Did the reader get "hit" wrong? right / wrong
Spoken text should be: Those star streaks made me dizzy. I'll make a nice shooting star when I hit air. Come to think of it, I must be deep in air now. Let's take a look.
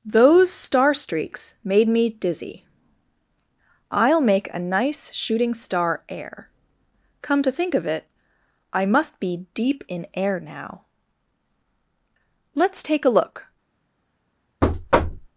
wrong